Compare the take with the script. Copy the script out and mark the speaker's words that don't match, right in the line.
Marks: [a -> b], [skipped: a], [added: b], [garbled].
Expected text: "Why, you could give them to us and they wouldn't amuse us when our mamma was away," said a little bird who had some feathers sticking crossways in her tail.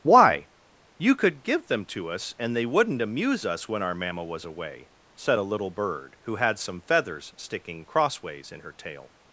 "Why, you could give them to us and they wouldn't amuse us when our mamma was away," said a little bird who had some feathers sticking crossways in her tail.